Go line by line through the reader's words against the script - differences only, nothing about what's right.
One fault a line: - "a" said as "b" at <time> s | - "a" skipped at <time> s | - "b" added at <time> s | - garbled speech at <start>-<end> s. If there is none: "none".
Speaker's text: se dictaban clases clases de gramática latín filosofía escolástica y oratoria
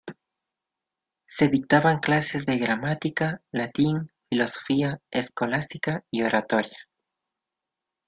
- "clases" skipped at 2.5 s